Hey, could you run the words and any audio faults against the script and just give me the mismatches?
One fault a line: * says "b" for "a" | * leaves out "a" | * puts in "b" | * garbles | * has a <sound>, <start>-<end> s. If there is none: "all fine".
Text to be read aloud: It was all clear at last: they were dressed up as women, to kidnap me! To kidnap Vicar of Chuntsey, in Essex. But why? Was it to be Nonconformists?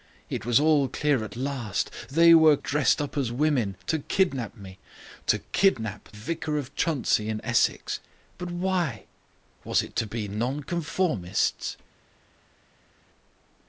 all fine